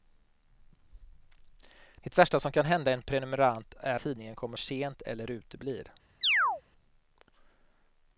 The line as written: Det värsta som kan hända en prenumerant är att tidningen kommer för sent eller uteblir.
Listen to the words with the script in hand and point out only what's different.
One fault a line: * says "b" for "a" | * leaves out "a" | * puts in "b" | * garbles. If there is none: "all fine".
* leaves out "att"
* leaves out "för"